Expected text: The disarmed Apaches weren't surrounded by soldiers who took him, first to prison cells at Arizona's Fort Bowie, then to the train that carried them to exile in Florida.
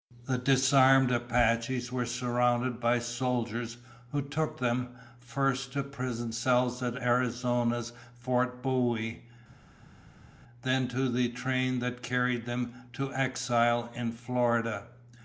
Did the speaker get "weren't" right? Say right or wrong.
wrong